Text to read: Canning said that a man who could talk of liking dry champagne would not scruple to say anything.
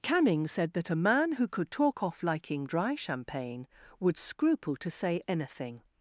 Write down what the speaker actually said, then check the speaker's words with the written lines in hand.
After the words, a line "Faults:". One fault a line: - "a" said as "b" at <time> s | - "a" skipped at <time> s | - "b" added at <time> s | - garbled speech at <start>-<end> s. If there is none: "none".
Canning said that a man who could talk off liking dry champagne would scruple to say anything.
Faults:
- "of" said as "off" at 2.0 s
- "not" skipped at 4.2 s